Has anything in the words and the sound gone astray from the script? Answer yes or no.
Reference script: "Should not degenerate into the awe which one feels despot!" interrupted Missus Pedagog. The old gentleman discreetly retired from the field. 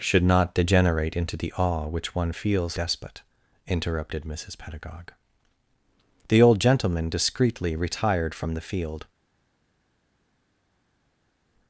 no